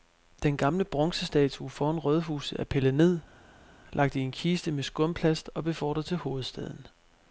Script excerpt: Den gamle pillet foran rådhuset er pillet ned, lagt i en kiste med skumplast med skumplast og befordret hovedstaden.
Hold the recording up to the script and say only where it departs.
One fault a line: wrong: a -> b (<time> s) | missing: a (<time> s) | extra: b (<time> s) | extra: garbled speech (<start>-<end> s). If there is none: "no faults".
wrong: pillet -> bronzestatue (0.8 s)
missing: med skumplast (5.5 s)
extra: til (6.0 s)